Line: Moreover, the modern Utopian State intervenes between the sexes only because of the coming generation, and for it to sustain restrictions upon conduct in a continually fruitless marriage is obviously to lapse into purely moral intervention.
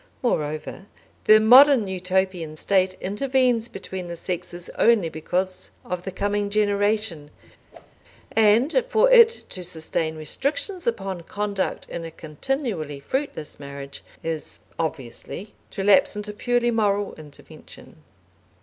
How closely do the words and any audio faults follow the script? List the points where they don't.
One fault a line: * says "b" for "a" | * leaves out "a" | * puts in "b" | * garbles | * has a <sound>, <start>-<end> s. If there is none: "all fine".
* has a whoosh, 7.7-8.0 s